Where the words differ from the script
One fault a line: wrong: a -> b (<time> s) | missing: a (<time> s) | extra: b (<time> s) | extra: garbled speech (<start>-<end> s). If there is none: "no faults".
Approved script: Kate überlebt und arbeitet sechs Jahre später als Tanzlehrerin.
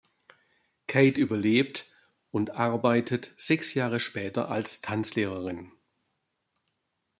no faults